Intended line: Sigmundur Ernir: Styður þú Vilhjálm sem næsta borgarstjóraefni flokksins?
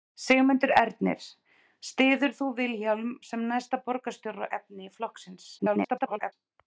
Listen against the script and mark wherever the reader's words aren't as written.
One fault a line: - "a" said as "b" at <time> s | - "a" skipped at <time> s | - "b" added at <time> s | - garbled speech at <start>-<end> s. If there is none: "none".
- garbled speech at 5.6-6.3 s